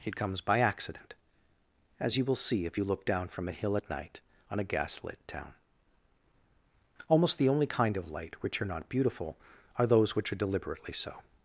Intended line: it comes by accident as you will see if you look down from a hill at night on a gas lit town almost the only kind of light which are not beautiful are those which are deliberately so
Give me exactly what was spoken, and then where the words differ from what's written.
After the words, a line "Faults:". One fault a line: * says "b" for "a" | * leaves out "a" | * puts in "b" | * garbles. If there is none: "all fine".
it comes by accident as you will see if you look down from a hill at night on a gas lit town almost the only kind of light which are not beautiful are those which are deliberately so
Faults:
all fine